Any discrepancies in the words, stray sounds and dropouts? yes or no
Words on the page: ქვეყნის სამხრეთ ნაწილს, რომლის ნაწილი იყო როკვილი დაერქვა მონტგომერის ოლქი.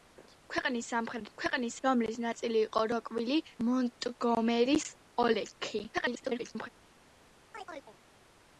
yes